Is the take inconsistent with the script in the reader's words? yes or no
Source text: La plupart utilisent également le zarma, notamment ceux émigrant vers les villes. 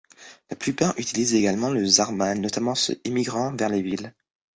no